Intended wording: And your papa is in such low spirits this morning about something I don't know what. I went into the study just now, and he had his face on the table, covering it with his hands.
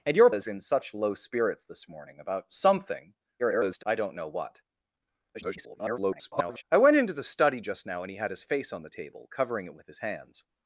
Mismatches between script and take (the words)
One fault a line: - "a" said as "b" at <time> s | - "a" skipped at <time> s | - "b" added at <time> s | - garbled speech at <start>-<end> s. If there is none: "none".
- "papa" skipped at 0.3 s
- garbled speech at 3.4-3.8 s
- garbled speech at 5.3-6.6 s